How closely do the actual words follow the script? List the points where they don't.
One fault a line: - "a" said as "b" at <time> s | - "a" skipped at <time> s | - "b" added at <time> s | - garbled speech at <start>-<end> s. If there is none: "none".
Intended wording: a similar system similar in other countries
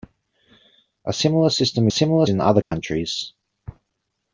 none